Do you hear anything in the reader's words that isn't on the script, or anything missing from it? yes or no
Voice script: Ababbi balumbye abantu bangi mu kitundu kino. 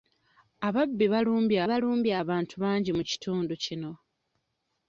yes